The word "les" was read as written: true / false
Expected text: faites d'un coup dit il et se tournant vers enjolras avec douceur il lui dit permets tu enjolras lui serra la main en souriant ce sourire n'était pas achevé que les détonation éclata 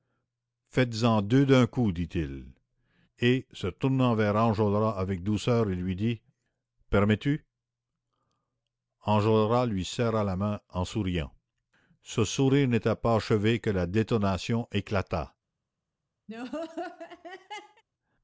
false